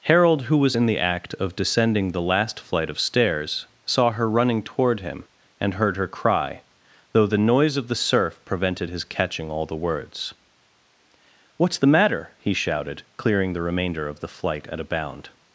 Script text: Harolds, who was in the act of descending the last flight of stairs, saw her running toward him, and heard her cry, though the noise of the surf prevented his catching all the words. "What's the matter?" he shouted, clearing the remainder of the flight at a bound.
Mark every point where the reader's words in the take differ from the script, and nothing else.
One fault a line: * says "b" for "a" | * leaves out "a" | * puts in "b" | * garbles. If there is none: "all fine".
* says "Harold" for "Harolds"